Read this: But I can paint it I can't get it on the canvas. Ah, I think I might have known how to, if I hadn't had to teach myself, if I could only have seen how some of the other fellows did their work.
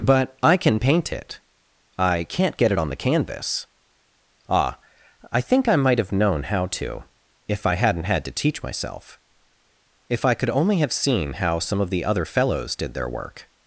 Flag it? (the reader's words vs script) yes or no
no